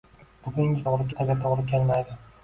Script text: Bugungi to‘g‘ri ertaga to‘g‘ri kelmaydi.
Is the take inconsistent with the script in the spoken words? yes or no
no